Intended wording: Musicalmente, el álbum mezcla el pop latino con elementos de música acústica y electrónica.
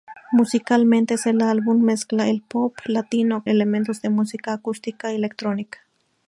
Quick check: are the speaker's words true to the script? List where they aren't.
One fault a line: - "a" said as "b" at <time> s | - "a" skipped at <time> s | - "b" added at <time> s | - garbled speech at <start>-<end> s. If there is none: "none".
- "con" skipped at 3.5 s